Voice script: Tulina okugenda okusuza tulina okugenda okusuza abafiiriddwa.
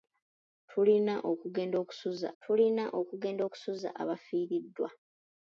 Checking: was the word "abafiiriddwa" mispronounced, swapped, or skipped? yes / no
no